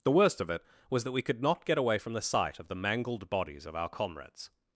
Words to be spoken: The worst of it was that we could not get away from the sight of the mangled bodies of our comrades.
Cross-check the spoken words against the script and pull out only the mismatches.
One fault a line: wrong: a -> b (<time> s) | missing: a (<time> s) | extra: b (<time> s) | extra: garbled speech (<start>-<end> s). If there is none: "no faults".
no faults